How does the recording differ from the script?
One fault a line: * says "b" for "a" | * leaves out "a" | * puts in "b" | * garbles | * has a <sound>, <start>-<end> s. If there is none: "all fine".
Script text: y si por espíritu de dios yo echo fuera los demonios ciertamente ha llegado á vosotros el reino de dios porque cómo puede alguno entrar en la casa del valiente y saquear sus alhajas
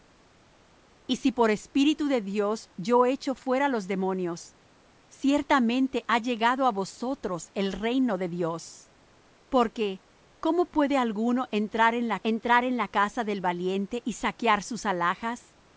* puts in "entrar en la"